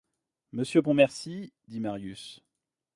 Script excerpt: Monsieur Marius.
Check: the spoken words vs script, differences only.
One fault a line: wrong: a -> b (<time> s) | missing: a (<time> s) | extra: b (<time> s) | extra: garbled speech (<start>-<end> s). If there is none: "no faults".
extra: Pontmercy dit (0.8 s)